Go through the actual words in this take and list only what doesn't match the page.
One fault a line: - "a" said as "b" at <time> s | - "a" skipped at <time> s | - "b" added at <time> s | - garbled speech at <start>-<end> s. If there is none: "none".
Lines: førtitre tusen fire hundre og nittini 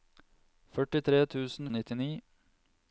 - "fire hundre" skipped at 1.7 s